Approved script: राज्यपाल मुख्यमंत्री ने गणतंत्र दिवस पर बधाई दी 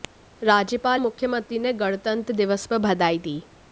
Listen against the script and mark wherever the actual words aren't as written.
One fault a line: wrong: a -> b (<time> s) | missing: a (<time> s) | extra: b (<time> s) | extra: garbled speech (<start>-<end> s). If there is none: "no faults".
no faults